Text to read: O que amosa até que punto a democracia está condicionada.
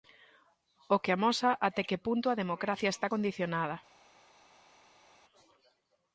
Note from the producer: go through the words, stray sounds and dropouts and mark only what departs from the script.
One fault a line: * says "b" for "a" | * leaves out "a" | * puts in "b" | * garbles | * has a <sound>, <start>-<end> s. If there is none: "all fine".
all fine